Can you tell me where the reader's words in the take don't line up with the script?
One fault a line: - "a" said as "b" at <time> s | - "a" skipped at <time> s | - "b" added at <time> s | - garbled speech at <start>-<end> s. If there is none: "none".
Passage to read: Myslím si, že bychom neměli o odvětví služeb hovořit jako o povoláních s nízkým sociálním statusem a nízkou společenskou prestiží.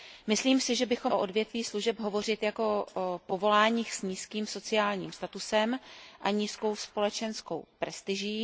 - "neměli" skipped at 1.1 s